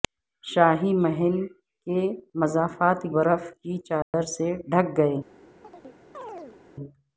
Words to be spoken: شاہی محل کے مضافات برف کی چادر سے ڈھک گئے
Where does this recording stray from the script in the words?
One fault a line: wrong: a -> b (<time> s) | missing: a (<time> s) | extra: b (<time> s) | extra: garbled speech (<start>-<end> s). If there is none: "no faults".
no faults